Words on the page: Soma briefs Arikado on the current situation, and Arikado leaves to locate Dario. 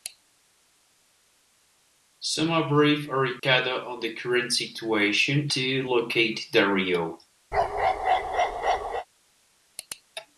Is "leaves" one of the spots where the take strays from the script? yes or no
yes